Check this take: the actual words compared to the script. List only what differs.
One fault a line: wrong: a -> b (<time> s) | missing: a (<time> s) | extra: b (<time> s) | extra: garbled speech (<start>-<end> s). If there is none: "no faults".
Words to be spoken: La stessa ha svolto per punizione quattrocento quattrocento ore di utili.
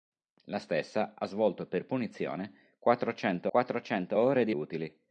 no faults